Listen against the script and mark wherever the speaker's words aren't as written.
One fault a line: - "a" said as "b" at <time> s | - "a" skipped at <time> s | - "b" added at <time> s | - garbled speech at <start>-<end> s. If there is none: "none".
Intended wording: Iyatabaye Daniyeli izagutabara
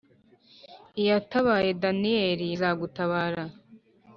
none